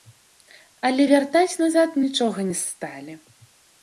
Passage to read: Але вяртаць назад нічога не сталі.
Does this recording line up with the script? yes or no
yes